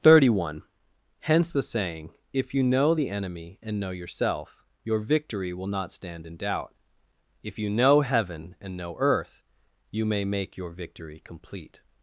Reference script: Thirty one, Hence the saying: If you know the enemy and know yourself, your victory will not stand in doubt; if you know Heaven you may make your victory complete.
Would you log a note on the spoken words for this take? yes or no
yes